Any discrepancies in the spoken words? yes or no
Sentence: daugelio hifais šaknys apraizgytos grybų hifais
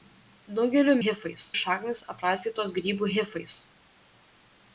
no